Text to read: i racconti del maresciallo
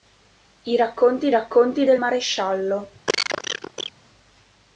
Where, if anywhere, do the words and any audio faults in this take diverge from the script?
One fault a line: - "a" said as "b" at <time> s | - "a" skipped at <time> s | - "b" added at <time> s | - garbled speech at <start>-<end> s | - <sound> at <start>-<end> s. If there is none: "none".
- "racconti" added at 1.3 s
- cough at 3.1-3.9 s